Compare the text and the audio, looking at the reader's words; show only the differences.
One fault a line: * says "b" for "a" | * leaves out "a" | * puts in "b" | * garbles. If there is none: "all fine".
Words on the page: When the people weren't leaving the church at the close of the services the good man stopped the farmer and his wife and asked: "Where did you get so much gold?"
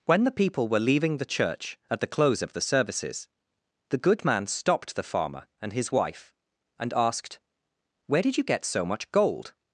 * says "were" for "weren't"